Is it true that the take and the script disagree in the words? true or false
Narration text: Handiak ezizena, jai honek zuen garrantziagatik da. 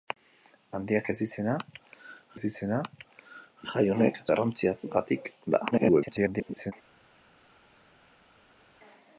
true